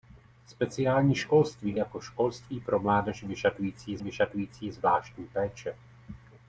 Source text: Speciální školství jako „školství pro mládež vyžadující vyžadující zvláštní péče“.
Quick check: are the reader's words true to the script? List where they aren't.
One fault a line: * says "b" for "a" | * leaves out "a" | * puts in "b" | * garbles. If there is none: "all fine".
all fine